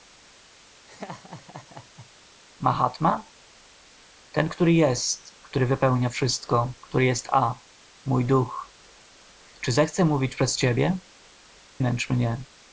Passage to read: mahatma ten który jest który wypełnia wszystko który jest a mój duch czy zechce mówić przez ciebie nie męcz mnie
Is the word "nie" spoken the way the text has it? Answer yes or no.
no